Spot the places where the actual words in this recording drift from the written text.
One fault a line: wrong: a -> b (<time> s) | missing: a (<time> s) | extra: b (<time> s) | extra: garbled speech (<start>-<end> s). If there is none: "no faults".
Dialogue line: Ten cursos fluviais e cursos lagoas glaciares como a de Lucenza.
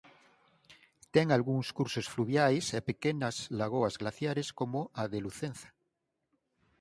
extra: algúns (1.4 s)
wrong: cursos -> pequenas (2.9 s)